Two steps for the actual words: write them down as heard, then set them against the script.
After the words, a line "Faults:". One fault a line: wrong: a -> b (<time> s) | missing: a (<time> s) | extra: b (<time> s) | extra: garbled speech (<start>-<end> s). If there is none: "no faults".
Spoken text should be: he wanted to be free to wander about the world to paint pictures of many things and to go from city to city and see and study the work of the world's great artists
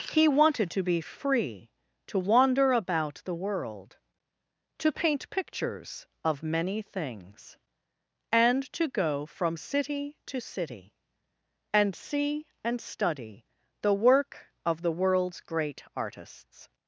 he wanted to be free to wander about the world to paint pictures of many things and to go from city to city and see and study the work of the world's great artists
Faults:
no faults